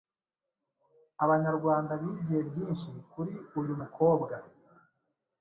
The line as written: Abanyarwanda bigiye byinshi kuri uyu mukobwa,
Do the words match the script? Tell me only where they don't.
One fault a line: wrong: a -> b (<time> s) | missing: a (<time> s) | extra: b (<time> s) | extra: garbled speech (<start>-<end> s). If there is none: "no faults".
no faults